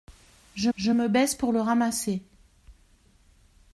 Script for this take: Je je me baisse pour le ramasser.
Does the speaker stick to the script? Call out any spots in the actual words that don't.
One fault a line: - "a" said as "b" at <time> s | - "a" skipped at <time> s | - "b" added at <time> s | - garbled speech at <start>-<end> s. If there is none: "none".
none